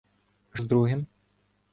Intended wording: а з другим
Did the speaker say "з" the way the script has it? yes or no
yes